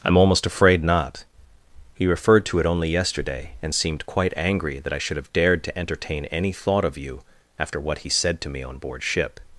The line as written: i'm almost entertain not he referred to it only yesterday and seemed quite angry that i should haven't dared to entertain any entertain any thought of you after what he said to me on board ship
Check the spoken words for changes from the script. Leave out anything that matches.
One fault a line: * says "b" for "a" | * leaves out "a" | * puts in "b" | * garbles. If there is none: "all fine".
* says "afraid" for "entertain"
* says "have" for "haven't"
* leaves out "entertain any"